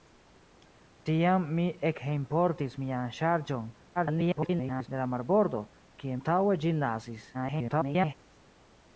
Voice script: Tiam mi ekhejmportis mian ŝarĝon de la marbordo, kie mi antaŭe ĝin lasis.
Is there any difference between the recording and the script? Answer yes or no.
yes